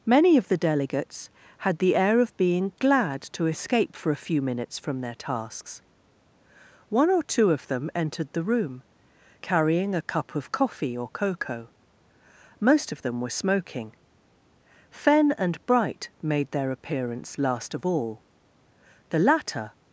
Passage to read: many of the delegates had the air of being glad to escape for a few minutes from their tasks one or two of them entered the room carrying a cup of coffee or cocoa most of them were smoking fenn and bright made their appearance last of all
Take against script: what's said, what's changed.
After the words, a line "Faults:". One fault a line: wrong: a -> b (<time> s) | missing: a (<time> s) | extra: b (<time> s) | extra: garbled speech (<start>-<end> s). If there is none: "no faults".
many of the delegates had the air of being glad to escape for a few minutes from their tasks one or two of them entered the room carrying a cup of coffee or cocoa most of them were smoking fenn and bright made their appearance last of all the latter
Faults:
extra: the latter (19.1 s)